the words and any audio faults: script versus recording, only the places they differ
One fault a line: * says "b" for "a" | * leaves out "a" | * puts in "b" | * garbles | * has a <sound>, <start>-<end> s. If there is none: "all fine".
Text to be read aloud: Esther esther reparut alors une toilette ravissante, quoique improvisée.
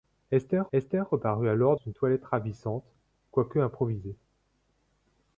all fine